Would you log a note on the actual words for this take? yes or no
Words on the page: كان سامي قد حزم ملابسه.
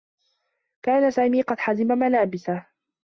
no